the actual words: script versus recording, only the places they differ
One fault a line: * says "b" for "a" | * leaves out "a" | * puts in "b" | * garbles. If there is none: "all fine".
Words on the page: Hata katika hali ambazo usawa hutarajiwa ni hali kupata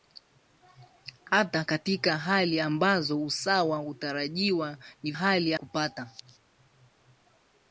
all fine